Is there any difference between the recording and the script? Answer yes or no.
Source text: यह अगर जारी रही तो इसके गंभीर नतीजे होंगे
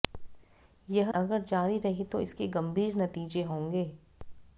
no